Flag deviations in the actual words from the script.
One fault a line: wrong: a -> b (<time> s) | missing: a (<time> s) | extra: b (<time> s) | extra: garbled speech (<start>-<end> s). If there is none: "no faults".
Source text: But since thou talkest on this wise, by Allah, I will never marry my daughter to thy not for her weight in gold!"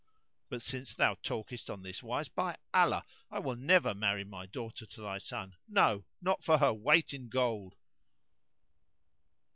extra: son no (5.2 s)